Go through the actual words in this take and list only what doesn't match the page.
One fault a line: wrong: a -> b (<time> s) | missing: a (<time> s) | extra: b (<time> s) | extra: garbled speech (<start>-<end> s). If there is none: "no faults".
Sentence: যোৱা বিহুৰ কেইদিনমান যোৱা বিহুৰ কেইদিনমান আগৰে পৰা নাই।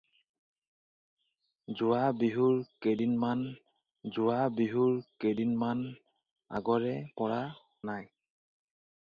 no faults